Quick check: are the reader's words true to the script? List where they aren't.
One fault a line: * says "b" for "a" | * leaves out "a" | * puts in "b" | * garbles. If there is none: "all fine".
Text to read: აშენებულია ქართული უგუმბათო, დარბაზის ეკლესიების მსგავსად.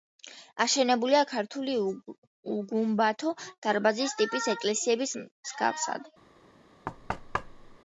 * puts in "ტიპის"